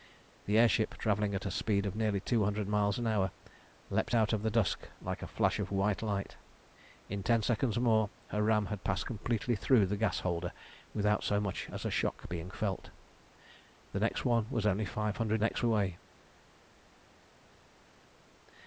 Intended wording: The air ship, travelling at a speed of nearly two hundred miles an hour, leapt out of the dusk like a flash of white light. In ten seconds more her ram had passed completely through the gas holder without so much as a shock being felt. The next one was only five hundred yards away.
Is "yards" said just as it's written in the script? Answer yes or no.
no